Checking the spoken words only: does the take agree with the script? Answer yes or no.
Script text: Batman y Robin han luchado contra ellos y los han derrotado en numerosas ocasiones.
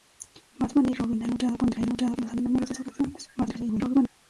no